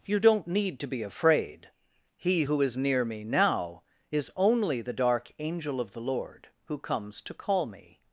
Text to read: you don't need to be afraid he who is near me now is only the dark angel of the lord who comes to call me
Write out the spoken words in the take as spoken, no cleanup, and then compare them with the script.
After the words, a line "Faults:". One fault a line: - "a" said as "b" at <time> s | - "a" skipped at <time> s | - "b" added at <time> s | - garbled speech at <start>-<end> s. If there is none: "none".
you don't need to be afraid he who is near me now is only the dark angel of the lord who comes to call me
Faults:
none